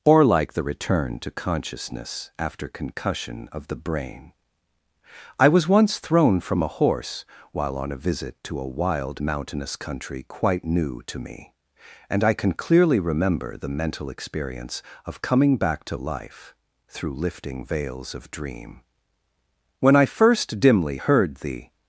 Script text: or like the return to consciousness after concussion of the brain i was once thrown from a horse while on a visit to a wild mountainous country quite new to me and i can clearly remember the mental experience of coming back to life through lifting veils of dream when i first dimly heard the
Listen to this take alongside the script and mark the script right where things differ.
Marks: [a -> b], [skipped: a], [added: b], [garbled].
or like the return to consciousness after concussion of the brain i was once thrown from a horse while on a visit to a wild mountainous country quite new to me and i can clearly remember the mental experience of coming back to life through lifting veils of dream when i first dimly heard the